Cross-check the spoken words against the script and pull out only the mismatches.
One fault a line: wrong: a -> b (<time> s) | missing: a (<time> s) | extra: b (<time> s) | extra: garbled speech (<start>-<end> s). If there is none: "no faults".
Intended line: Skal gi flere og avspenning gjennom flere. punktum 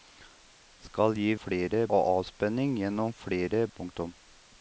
no faults